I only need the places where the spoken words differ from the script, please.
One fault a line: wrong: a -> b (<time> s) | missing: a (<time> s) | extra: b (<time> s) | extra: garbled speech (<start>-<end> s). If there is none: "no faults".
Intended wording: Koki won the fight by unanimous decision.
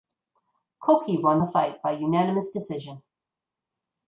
no faults